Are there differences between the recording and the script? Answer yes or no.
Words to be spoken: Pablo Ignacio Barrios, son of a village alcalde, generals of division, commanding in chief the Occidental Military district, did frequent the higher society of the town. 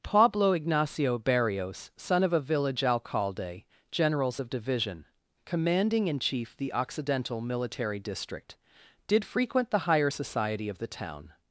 no